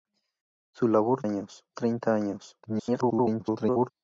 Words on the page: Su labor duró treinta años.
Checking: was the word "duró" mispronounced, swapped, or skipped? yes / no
yes